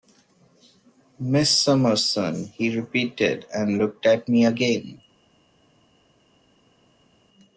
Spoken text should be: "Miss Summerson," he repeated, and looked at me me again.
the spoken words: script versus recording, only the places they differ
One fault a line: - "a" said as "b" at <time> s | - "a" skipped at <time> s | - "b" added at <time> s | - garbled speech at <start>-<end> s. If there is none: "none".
- "me" skipped at 4.5 s